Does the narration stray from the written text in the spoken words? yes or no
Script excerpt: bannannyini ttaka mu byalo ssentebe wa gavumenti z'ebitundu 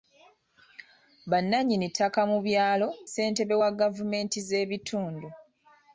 no